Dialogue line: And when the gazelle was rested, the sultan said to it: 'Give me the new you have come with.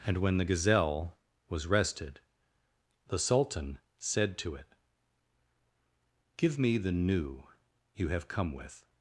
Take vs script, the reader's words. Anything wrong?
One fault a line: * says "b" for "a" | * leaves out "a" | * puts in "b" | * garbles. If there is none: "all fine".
all fine